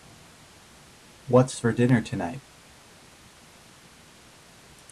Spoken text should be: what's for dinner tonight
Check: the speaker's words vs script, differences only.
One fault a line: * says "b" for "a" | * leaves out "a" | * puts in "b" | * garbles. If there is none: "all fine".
all fine